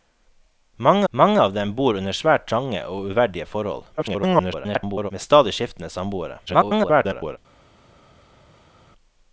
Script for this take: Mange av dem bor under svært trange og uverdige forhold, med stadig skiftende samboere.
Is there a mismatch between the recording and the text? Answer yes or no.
yes